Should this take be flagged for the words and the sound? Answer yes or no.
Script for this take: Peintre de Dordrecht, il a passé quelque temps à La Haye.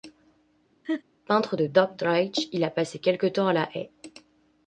yes